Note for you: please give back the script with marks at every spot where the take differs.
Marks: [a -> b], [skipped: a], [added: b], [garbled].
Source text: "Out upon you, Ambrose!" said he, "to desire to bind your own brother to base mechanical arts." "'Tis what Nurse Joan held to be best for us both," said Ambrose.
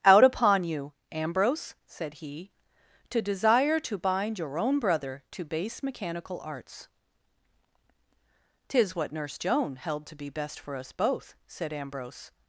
"Out upon you, Ambrose!" said he, "to desire to bind your own brother to base mechanical arts." "'Tis what Nurse Joan held to be best for us both," said Ambrose.